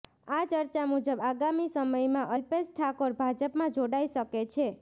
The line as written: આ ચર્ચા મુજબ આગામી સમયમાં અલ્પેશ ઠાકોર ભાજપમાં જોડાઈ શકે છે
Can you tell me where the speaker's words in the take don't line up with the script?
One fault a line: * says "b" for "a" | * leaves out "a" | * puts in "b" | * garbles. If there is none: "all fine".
all fine